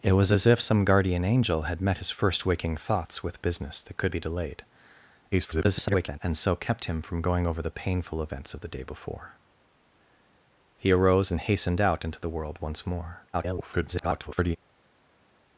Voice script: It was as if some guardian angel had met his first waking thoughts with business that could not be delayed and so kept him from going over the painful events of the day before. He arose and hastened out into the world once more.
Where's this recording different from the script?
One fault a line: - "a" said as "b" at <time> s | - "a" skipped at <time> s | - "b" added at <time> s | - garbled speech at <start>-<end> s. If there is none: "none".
- "not" skipped at 4.2 s
- garbled speech at 5.3-6.2 s
- garbled speech at 13.3-14.6 s